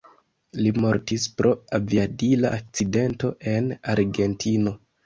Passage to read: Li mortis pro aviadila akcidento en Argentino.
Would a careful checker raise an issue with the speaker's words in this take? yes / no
no